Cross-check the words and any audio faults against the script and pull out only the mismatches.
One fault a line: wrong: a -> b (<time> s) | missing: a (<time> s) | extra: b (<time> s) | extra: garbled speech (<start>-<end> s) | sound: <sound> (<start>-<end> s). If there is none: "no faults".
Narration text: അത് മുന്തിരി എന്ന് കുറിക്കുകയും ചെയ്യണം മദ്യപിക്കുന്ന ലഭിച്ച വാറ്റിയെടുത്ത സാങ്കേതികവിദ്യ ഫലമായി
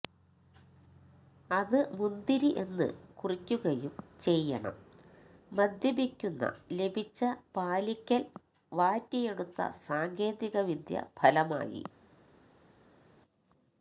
extra: പാലിക്കൽ (7.5 s)